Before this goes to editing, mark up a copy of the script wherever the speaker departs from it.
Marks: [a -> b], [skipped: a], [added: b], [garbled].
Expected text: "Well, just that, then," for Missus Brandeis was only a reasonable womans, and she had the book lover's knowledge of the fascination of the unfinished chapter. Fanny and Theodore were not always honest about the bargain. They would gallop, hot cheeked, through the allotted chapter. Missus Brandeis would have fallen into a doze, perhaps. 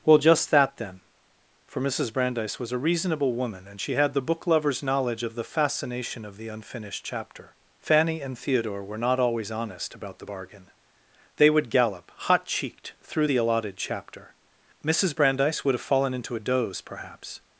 "Well, just that, then," for Missus Brandeis was [skipped: only] a reasonable [womans, -> woman] and she had the book lover's knowledge of the fascination of the unfinished chapter. Fanny and Theodore were not always honest about the bargain. They would gallop, hot cheeked, through the allotted chapter. Missus Brandeis would have fallen into a doze, perhaps.